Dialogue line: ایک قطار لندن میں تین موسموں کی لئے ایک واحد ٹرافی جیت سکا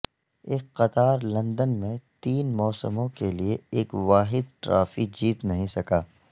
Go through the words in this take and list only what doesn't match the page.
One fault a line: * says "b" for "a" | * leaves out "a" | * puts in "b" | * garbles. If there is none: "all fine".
* says "کے" for "کی"
* puts in "نہیں"